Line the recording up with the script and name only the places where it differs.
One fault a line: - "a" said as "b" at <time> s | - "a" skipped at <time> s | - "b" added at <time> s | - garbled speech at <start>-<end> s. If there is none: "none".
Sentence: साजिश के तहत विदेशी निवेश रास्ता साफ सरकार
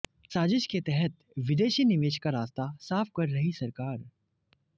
- "का" added at 2.2 s
- "कर रही" added at 3.2 s